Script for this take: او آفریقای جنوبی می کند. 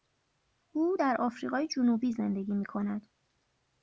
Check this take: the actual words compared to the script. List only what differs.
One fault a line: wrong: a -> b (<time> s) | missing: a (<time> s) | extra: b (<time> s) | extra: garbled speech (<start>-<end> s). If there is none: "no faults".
extra: در (0.9 s)
extra: زندگی (2.1 s)